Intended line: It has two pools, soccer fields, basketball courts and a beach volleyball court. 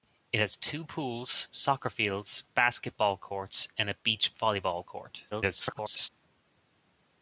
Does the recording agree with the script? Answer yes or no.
no